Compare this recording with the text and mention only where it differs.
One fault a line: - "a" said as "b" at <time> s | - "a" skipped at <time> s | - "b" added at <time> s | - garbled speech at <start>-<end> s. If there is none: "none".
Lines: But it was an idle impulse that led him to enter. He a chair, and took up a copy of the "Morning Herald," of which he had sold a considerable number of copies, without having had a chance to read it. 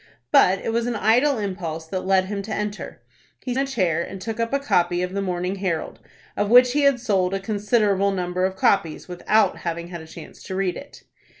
none